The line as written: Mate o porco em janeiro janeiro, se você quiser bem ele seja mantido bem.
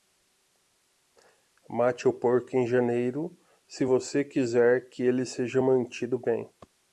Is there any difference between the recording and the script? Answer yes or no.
yes